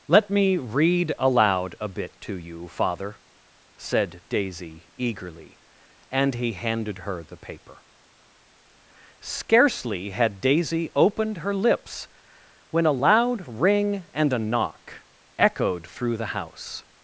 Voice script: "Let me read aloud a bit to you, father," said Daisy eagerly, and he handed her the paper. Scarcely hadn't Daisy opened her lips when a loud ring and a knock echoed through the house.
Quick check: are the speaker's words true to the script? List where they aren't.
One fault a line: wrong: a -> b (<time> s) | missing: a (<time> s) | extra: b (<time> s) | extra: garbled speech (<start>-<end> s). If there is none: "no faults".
wrong: hadn't -> had (10.1 s)